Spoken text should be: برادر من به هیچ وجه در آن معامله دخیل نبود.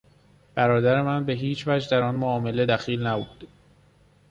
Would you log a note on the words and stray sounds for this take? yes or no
no